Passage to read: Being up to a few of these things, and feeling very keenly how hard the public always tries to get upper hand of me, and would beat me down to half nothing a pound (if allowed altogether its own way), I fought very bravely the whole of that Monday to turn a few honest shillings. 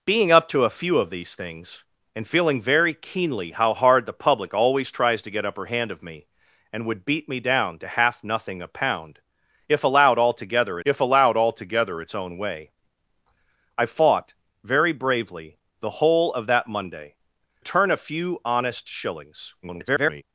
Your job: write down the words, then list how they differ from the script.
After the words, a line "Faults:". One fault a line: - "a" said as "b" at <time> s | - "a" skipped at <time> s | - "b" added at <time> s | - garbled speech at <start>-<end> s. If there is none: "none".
Being up to a few of these things, and feeling very keenly how hard the public always tries to get upper hand of me, and would beat me down to half nothing a pound (if allowed altogether if allowed altogether its own way), I fought very bravely the whole of that Monday turn a few honest shillings. [garbled]
Faults:
- "if allowed altogether" added at 10.8 s
- "to" skipped at 17.1 s
- garbled speech at 19.6-20.2 s